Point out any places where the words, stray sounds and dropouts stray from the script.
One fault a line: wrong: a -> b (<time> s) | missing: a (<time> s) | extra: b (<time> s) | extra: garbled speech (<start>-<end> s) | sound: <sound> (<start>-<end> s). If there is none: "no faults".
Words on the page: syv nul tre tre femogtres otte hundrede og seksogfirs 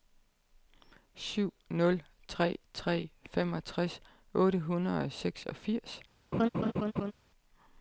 sound: laugh (6.3-7.1 s)